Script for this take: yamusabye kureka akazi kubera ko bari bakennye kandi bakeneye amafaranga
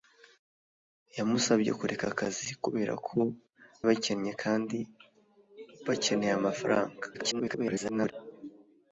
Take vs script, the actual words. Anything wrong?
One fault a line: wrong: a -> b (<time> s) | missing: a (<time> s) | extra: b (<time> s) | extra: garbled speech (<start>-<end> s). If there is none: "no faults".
missing: bari (3.2 s)
extra: garbled speech (7.1-8.1 s)